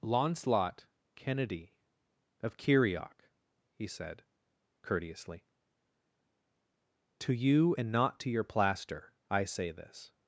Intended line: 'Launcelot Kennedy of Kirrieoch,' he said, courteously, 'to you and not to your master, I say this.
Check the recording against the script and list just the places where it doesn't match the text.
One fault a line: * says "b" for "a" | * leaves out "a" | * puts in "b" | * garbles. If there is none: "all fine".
* says "plaster" for "master"